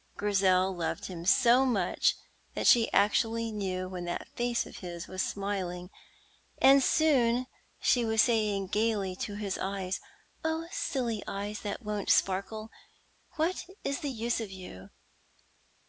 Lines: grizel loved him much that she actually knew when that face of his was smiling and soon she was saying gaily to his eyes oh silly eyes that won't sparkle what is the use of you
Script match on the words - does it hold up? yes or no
no